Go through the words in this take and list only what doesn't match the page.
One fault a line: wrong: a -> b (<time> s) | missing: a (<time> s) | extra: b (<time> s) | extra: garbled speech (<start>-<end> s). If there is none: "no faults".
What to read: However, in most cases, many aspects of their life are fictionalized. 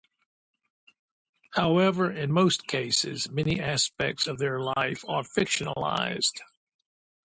no faults